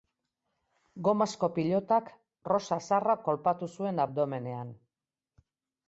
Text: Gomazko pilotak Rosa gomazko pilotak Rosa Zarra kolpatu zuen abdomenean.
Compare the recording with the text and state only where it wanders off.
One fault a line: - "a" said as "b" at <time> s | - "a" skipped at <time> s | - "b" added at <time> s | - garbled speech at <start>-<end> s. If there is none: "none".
- "gomazko pilotak Rosa" skipped at 2.8 s